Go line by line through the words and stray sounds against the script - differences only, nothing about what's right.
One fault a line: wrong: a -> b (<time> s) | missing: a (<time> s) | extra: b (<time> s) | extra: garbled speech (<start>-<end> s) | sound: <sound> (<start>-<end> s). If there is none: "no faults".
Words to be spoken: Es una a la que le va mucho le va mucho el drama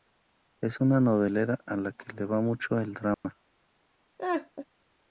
extra: novelera (1.0 s)
missing: le va mucho (2.8 s)
sound: dropout (3.1-3.2 s)
sound: laugh (4.2-4.7 s)